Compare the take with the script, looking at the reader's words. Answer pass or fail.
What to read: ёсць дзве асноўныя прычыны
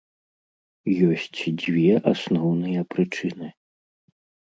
pass